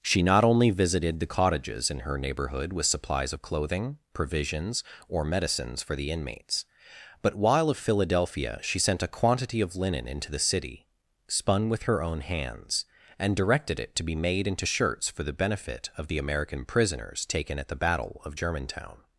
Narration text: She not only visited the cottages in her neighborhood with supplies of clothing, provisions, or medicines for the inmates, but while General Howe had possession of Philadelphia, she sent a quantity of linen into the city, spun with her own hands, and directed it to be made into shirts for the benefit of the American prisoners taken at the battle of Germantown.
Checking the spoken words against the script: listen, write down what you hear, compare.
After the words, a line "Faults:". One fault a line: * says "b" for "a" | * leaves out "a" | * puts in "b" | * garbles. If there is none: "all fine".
She not only visited the cottages in her neighborhood with supplies of clothing, provisions, or medicines for the inmates, but while of Philadelphia, she sent a quantity of linen into the city, spun with her own hands, and directed it to be made into shirts for the benefit of the American prisoners taken at the battle of Germantown.
Faults:
* leaves out "General Howe had possession"